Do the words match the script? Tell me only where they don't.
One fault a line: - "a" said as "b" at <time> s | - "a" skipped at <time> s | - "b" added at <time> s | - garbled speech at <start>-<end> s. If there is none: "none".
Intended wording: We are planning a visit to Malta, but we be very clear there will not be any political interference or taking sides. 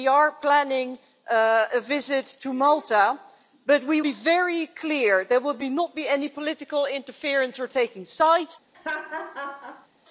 none